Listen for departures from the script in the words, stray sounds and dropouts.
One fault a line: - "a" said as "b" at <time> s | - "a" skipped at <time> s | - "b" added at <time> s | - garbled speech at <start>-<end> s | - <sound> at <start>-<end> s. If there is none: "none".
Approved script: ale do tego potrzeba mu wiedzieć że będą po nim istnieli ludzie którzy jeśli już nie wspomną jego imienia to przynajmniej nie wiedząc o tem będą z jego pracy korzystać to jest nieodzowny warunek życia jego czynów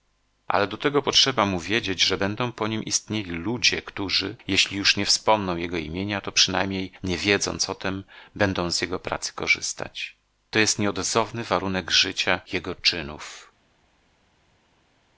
none